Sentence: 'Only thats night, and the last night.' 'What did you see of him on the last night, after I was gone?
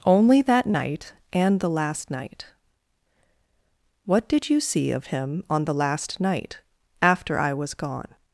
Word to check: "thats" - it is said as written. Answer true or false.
false